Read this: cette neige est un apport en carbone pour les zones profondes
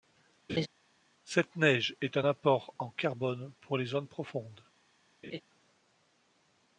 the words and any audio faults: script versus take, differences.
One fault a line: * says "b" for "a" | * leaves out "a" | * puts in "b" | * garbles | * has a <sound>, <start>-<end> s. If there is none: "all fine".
* has a laugh, 0.5-0.7 s
* has a laugh, 5.2-5.4 s